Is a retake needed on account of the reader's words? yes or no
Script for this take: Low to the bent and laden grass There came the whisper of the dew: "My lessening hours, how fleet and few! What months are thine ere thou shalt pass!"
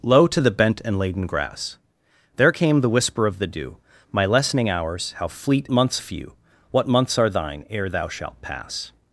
yes